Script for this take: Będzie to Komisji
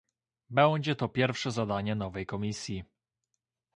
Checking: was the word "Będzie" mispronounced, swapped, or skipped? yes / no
no